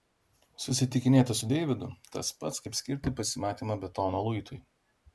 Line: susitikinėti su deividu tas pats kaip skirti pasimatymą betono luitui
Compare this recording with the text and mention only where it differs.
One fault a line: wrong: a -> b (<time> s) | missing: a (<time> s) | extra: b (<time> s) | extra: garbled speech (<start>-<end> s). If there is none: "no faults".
no faults